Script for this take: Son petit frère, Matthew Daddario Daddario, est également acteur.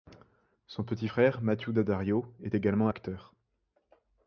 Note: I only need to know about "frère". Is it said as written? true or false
true